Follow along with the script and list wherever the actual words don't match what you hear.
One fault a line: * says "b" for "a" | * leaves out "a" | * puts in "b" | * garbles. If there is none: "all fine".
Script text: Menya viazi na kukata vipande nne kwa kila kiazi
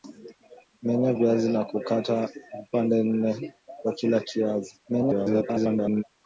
* garbles